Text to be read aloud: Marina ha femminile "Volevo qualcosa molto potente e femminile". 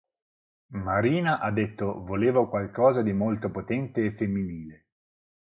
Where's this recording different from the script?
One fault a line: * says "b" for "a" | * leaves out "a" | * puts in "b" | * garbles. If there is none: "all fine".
* says "detto" for "femminile"
* puts in "di"